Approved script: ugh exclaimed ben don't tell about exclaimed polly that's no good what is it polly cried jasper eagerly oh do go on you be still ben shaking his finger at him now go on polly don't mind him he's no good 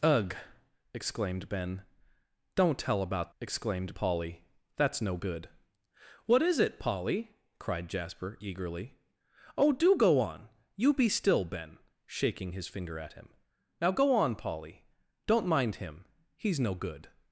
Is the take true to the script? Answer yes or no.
yes